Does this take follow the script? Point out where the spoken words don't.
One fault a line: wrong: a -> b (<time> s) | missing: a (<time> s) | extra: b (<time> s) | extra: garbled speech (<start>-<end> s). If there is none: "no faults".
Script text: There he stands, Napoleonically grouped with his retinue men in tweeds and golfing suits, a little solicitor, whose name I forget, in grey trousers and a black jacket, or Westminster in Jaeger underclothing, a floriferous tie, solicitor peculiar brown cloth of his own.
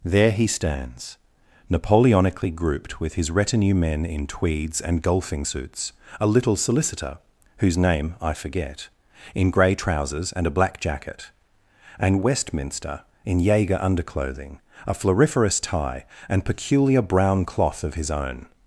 wrong: or -> and (12.0 s)
wrong: solicitor -> and (16.3 s)